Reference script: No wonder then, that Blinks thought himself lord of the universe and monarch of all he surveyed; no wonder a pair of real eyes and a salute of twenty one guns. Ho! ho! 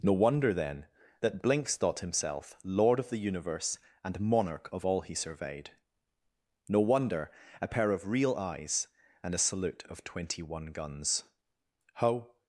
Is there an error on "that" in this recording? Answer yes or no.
no